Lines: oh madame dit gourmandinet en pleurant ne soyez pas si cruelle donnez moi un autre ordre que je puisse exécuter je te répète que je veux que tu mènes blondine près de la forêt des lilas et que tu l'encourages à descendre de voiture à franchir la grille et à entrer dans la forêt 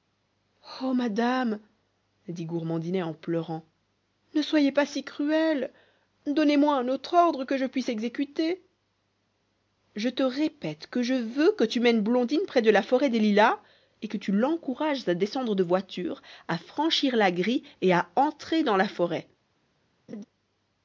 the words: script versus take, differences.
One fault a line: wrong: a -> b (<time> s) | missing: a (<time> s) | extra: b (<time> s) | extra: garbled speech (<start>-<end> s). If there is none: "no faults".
no faults